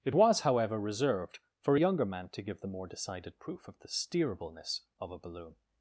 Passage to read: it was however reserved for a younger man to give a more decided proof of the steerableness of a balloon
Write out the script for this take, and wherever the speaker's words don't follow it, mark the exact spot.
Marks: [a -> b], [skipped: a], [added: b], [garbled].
it was however reserved for a younger man to give [a -> the] more decided proof of the steerableness of a balloon